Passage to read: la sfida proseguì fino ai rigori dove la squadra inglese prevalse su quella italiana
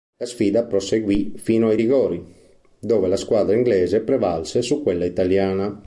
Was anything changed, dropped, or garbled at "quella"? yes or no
no